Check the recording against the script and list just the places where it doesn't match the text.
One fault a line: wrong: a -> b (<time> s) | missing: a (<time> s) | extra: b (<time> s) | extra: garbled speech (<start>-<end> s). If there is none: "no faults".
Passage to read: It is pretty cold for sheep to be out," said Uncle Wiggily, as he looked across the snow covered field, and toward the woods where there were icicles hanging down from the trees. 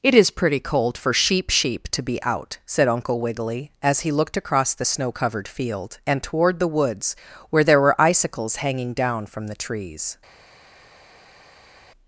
extra: sheep (1.5 s)